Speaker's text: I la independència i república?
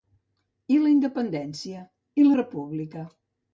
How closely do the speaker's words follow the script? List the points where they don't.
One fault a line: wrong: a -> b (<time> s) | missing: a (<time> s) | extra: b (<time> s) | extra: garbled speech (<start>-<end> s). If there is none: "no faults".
no faults